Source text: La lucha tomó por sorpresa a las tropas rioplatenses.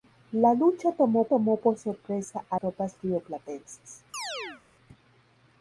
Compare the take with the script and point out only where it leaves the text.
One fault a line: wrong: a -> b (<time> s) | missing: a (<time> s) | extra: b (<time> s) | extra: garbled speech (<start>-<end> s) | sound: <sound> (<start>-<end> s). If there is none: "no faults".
extra: tomó (1.2 s)
missing: las (2.6 s)
sound: chirp (4.1-4.6 s)